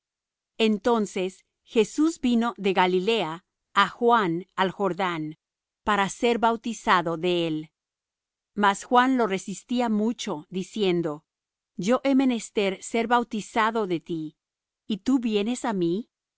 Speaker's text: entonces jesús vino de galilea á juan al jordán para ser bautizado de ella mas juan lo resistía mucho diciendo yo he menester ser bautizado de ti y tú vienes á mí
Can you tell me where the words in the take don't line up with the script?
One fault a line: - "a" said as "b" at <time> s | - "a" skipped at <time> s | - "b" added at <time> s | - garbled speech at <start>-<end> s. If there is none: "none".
- "ella" said as "él" at 7.5 s